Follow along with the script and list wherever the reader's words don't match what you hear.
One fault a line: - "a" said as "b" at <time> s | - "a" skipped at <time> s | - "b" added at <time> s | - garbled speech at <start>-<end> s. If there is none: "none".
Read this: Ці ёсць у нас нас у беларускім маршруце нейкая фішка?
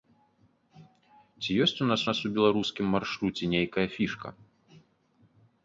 none